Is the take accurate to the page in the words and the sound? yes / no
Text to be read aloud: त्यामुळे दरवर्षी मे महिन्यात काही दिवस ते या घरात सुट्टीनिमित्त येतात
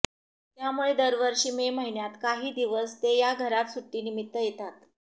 yes